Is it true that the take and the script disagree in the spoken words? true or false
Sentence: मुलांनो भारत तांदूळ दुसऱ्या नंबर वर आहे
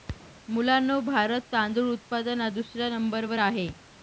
true